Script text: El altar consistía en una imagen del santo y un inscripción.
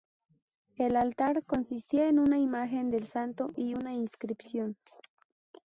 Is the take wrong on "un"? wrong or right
wrong